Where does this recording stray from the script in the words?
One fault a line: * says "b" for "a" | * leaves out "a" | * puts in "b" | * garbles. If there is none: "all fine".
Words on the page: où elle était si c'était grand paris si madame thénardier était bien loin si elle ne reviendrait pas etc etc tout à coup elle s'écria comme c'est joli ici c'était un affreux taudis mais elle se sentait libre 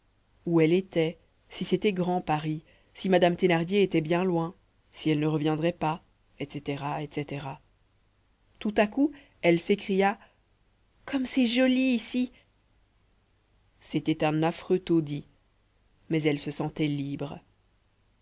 all fine